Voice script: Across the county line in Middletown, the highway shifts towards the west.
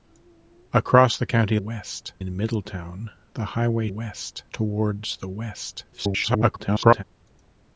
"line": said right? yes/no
no